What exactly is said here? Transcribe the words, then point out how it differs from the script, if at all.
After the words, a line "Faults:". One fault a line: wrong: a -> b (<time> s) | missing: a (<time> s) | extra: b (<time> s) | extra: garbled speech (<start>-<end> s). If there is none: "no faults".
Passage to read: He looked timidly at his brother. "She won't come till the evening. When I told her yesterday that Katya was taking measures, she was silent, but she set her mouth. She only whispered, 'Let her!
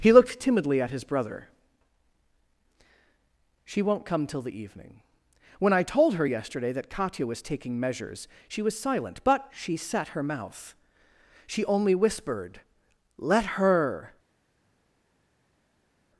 He looked timidly at his brother. "She won't come till the evening. When I told her yesterday that Katya was taking measures, she was silent, but she set her mouth. She only whispered, 'Let her!
Faults:
no faults